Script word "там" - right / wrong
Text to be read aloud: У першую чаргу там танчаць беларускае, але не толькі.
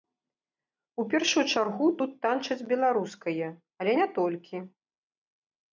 wrong